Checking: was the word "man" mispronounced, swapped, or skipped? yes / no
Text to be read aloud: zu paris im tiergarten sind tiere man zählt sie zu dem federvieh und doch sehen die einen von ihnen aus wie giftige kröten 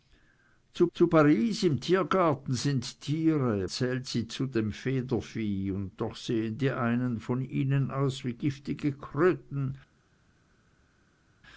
yes